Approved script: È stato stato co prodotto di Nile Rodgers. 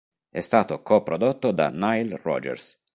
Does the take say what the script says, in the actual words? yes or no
no